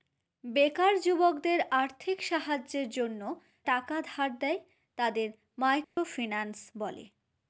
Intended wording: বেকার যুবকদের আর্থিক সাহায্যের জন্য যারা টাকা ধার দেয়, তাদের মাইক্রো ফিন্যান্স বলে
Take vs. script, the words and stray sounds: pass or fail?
fail